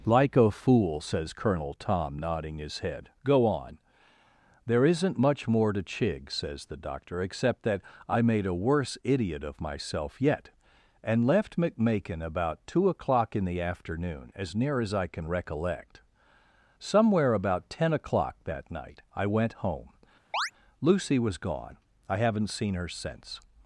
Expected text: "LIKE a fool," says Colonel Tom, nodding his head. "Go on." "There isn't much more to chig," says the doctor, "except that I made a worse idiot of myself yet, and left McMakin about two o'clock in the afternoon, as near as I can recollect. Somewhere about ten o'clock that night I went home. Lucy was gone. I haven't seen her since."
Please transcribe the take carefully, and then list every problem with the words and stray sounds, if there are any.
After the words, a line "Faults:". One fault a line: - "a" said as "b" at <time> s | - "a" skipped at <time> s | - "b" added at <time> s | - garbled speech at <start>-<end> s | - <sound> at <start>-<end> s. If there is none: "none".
"LIKE a fool," says Colonel Tom, nodding his head. "Go on." "There isn't much more to chig," says the doctor, "except that I made a worse idiot of myself yet, and left McMakin about two o'clock in the afternoon, as near as I can recollect. Somewhere about ten o'clock that night I went home. Lucy was gone. I haven't seen her since."
Faults:
- chirp at 20.3-20.5 s